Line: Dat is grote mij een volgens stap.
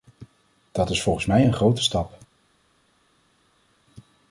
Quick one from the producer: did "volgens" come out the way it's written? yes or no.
no